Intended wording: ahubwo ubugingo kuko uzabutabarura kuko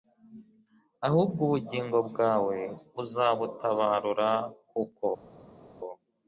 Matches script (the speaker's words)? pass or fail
fail